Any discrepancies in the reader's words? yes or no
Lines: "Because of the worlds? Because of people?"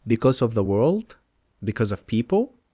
yes